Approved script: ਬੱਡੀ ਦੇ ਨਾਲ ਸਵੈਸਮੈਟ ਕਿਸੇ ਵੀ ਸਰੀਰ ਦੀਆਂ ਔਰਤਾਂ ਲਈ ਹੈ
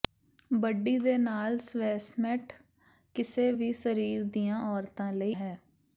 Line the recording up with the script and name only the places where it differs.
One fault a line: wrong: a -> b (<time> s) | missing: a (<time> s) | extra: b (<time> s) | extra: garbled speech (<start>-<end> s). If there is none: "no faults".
no faults